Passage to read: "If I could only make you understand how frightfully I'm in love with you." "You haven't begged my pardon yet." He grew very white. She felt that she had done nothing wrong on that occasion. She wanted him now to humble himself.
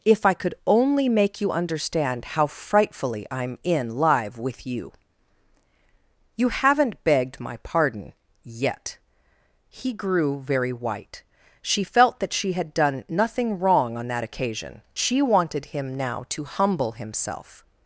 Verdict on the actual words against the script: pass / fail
fail